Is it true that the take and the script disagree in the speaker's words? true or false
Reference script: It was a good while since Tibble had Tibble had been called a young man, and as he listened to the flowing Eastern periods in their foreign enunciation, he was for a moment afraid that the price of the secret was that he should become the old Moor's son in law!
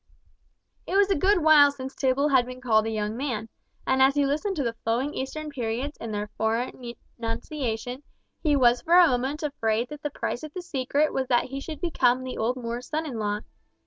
true